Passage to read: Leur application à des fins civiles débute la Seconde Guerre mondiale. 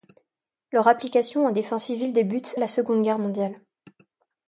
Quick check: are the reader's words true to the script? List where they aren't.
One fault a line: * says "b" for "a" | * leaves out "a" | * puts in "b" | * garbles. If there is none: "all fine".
all fine